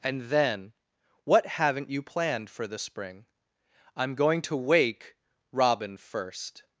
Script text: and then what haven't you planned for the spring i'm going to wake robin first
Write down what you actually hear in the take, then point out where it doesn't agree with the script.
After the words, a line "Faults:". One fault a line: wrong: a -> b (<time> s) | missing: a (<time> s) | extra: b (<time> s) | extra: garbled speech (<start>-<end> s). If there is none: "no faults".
and then what haven't you planned for the spring i'm going to wake robin first
Faults:
no faults